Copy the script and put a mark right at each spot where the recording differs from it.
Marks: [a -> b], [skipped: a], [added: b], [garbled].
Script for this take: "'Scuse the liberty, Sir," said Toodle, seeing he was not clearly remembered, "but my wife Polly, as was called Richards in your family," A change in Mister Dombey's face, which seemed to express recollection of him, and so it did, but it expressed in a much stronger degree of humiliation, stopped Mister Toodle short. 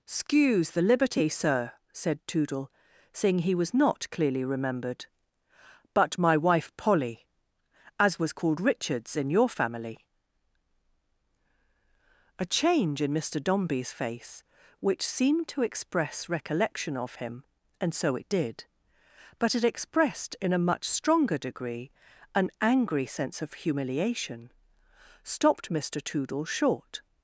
"'Scuse the liberty, Sir," said Toodle, seeing he was not clearly remembered, "but my wife Polly, as was called Richards in your family," A change in Mister Dombey's face, which seemed to express recollection of him, and so it did, but it expressed in a much stronger degree [added: an angry sense] of humiliation, stopped Mister Toodle short.